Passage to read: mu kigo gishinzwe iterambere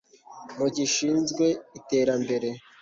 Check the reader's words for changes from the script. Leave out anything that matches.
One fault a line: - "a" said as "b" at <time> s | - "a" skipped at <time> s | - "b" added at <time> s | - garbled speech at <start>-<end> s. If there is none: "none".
- "kigo" skipped at 0.7 s